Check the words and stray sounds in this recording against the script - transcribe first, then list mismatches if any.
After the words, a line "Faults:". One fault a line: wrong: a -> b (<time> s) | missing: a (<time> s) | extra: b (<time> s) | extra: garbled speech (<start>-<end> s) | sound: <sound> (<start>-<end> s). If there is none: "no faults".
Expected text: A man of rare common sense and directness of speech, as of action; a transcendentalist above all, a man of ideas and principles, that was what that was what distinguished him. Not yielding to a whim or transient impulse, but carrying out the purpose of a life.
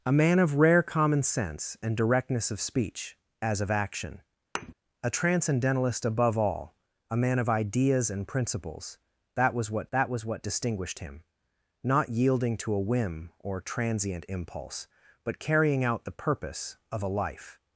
A man of rare common sense and directness of speech, as of action; a transcendentalist above all, a man of ideas and principles, that was what that was what distinguished him. Not yielding to a whim or transient impulse, but carrying out the purpose of a life.
Faults:
sound: thud (4.5-4.7 s)